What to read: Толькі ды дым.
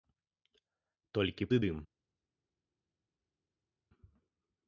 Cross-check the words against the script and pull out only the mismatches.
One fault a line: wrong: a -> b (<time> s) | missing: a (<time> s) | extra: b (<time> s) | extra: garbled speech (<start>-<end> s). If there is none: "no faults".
no faults